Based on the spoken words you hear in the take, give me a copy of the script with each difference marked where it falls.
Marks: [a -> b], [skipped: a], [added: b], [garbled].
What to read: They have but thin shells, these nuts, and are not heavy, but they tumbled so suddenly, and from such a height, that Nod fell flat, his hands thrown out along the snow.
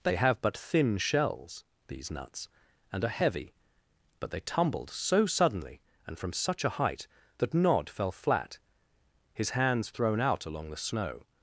They have but thin shells, these nuts, and are [skipped: not] heavy, but they tumbled so suddenly, and from such a height, that Nod fell flat, his hands thrown out along the snow.